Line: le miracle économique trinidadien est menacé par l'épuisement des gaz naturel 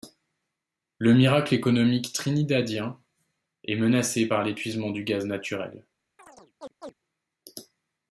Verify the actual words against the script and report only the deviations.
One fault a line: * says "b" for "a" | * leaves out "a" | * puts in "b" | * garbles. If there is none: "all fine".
* says "du" for "des"